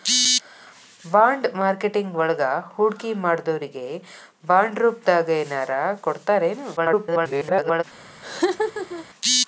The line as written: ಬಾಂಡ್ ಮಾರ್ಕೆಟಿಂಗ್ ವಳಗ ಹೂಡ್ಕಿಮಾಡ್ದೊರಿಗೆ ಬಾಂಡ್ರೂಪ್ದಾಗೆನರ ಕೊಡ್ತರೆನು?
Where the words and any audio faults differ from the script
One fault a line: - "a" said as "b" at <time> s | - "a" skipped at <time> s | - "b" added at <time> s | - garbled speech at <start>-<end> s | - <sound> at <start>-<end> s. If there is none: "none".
- garbled speech at 6.8-7.8 s
- laugh at 8.2-9.1 s